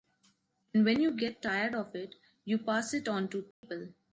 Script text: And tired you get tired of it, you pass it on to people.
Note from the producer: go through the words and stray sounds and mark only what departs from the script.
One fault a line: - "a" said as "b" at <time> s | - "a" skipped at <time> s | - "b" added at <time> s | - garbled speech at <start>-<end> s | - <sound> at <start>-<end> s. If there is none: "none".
- "tired" said as "when" at 0.8 s
- dropout at 3.5-3.6 s